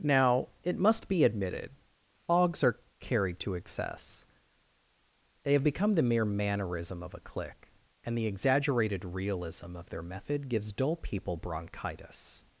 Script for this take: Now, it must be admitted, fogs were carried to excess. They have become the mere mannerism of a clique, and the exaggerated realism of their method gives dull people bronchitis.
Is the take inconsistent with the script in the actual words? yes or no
yes